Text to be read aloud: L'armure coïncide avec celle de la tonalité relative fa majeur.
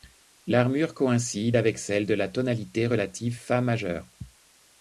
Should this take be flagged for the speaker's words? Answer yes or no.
no